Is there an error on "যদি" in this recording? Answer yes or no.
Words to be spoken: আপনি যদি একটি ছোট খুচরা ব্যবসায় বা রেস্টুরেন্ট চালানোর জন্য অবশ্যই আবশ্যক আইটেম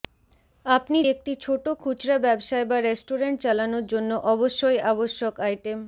yes